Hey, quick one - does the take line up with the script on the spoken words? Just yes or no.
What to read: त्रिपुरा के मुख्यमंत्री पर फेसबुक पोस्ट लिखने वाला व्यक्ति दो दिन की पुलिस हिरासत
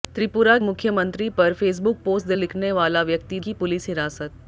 no